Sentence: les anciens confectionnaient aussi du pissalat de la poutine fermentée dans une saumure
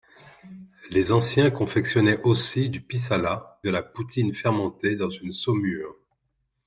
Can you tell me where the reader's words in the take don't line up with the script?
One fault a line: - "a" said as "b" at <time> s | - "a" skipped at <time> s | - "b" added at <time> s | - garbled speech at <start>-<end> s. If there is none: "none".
none